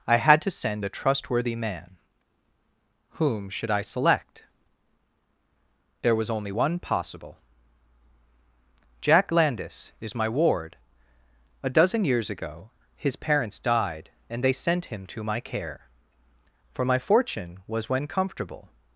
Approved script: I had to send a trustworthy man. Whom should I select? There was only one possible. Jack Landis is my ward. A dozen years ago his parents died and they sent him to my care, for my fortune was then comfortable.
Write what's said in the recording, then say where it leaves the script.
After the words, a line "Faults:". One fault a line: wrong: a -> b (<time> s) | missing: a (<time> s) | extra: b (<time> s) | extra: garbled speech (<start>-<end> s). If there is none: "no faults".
I had to send a trustworthy man. Whom should I select? There was only one possible. Jack Landis is my ward. A dozen years ago his parents died and they sent him to my care, for my fortune was when comfortable.
Faults:
wrong: then -> when (17.9 s)